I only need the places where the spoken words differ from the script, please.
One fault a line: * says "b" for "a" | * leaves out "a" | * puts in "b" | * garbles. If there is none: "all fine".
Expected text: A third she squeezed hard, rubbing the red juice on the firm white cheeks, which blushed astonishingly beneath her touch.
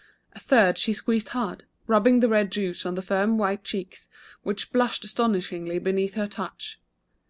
all fine